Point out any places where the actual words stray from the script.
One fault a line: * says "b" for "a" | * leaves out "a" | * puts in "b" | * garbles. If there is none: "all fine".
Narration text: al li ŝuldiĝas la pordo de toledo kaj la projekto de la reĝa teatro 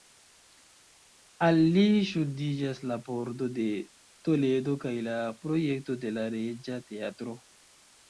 all fine